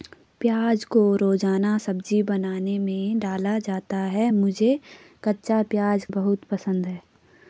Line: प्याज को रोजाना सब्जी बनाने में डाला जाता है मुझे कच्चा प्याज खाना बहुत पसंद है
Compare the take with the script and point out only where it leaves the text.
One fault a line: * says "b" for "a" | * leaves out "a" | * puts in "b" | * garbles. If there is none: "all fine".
* leaves out "खाना"